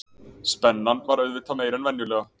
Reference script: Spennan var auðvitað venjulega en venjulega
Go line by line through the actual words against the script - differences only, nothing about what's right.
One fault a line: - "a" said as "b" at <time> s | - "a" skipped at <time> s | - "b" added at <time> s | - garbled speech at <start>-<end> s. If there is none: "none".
- "venjulega" said as "meiri" at 1.6 s